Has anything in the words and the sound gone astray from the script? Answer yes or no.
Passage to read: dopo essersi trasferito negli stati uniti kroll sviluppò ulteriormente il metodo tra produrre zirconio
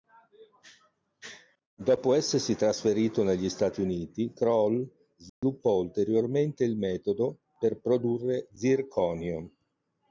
yes